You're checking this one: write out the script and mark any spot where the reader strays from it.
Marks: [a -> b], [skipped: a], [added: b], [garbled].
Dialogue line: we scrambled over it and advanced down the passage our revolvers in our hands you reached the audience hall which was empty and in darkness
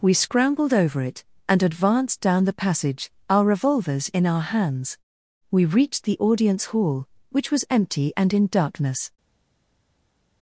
we scrambled over it and advanced down the passage our revolvers in our hands [you -> we] reached the audience hall which was empty and in darkness